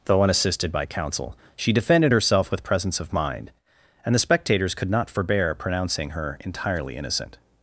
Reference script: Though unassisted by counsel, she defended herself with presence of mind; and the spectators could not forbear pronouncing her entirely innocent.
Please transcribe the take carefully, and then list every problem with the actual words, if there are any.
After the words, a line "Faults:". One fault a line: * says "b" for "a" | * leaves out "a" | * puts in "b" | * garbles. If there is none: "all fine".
Though unassisted by counsel, she defended herself with presence of mind; and the spectators could not forbear pronouncing her entirely innocent.
Faults:
all fine